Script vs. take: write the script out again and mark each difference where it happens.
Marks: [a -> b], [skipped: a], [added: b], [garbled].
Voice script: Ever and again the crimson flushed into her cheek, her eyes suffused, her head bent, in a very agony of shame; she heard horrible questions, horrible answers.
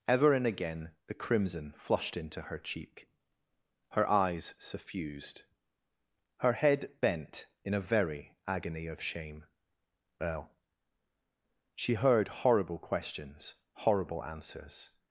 Ever and again the crimson flushed into her cheek, her eyes suffused, her head bent, in a very agony of shame; [added: well] she heard horrible questions, horrible answers.